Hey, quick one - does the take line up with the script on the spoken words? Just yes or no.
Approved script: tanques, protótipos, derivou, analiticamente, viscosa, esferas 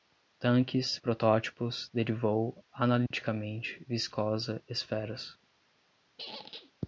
yes